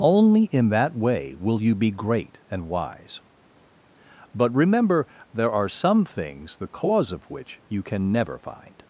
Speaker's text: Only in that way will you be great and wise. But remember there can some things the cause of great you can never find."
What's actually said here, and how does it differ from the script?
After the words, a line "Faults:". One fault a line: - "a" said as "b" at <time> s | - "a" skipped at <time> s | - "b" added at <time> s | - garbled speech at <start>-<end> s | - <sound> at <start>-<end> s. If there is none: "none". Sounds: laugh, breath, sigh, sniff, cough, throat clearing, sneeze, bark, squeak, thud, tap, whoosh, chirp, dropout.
Only in that way will you be great and wise. But remember there are some things the cause of which you can never find."
Faults:
- "can" said as "are" at 5.5 s
- "great" said as "which" at 7.3 s